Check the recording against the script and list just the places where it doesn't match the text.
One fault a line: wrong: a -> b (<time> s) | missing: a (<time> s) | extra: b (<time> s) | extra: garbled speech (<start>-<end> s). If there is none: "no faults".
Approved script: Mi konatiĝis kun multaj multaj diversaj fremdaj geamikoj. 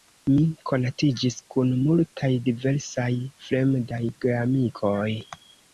missing: multaj (2.3 s)